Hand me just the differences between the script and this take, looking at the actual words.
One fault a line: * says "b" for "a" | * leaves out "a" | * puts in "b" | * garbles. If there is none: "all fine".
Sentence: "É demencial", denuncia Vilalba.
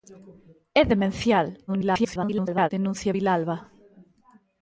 * garbles